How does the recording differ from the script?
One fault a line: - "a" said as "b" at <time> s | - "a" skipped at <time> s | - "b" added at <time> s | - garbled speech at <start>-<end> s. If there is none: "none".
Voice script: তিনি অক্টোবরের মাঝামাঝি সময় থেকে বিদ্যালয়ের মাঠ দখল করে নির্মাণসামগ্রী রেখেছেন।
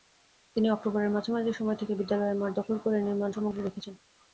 none